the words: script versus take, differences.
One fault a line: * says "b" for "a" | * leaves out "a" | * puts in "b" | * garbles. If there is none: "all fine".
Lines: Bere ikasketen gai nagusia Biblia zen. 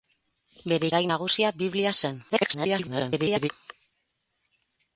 * leaves out "ikasketen"
* garbles